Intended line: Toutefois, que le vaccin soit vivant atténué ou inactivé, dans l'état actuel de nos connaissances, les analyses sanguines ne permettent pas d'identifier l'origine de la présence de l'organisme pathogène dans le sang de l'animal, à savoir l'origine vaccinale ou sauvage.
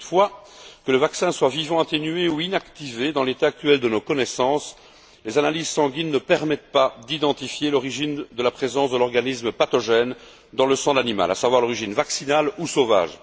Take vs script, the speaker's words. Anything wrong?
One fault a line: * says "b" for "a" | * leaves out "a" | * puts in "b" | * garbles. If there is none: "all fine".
all fine